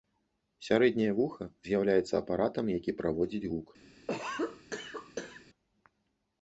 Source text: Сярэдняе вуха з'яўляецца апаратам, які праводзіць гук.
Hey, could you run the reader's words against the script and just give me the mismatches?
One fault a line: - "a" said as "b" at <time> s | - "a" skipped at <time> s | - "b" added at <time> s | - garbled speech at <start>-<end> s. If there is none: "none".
none